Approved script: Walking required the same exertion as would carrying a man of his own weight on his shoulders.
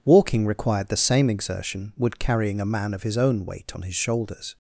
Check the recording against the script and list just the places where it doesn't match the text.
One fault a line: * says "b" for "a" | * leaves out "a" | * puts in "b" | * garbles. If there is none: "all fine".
* leaves out "as"